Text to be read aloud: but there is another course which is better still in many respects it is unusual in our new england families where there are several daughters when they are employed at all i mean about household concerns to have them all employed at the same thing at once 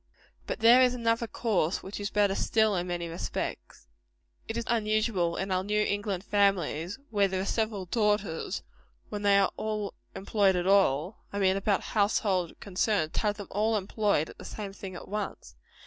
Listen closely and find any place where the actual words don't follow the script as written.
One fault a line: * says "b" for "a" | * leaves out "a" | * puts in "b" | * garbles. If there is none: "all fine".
all fine